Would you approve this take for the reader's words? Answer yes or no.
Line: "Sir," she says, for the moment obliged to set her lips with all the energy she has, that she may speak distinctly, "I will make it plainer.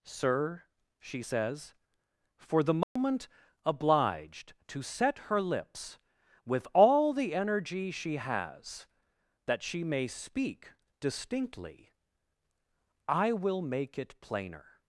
yes